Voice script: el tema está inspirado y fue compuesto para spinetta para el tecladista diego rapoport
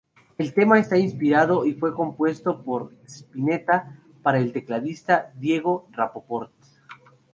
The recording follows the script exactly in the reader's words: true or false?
false